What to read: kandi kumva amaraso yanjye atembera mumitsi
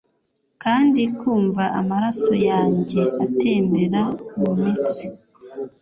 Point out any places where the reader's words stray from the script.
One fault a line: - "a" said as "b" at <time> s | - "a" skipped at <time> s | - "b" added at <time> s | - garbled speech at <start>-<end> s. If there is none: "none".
none